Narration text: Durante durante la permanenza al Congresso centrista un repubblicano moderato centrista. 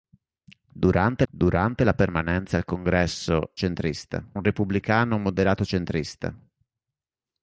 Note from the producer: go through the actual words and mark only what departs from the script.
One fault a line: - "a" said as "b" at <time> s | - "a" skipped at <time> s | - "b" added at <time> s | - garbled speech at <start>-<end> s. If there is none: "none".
none